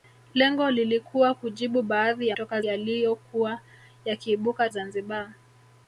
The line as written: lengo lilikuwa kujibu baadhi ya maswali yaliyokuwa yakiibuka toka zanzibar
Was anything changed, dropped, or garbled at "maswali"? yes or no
yes